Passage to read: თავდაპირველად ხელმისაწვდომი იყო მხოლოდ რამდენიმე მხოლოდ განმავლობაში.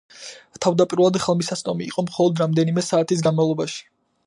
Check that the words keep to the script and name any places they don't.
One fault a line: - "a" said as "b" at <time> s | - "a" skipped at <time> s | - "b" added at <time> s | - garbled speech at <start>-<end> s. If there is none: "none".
- "მხოლოდ" said as "საათის" at 2.9 s